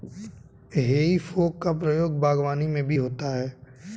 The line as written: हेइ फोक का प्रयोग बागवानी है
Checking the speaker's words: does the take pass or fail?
fail